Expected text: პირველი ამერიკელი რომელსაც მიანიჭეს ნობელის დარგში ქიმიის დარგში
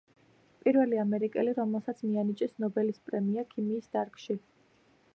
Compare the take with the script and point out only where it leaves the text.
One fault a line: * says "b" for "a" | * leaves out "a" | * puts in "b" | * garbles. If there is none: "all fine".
* says "პრემია" for "დარგში"